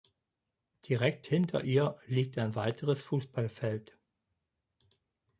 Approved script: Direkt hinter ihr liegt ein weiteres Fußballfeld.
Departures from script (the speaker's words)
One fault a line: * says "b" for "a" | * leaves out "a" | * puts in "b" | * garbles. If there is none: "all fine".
all fine